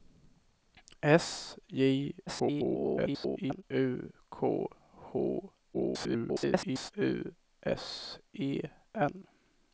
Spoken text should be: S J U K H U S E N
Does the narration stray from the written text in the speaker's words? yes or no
yes